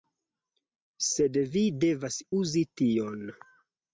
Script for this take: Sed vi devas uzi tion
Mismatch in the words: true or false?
false